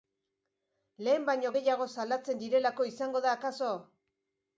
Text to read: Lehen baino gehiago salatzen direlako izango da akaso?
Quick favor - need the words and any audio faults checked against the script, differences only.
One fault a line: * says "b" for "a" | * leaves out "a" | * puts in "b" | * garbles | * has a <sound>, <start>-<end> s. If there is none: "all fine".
all fine